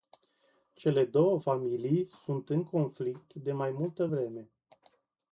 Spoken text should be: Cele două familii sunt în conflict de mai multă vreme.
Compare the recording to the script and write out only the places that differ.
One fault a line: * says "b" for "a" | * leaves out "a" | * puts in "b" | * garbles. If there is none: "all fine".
all fine